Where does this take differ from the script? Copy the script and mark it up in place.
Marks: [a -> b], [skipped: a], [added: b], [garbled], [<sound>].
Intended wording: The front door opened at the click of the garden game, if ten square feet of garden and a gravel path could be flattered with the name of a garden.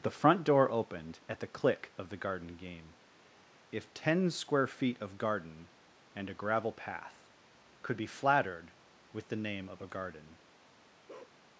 The front door opened at the click of the garden game, if ten square feet of garden and a gravel path could be flattered with the name of a garden. [bark]